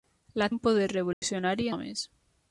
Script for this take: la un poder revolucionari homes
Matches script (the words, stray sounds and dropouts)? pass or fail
fail